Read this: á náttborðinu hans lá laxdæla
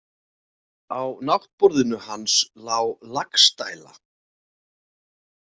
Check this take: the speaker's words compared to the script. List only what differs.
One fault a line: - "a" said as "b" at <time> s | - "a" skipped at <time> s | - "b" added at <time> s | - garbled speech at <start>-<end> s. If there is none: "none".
none